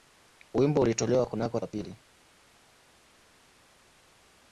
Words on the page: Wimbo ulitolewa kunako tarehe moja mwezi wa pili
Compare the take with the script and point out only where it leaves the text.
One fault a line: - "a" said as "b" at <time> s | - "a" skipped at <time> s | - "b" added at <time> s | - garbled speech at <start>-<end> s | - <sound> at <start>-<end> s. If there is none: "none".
- "tarehe moja mwezi" skipped at 1.6 s